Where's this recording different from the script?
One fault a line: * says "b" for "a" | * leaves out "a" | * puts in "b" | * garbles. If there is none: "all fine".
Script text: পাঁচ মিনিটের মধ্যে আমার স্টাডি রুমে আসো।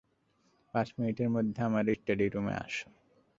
all fine